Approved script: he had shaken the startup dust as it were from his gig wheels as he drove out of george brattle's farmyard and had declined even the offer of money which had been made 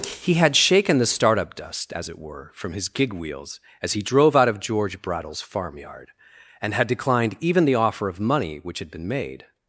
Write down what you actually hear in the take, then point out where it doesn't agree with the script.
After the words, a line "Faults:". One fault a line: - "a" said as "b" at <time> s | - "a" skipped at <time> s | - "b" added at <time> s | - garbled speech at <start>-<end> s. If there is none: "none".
he had shaken the startup dust as it were from his gig wheels as he drove out of george brattle's farmyard and had declined even the offer of money which had been made
Faults:
none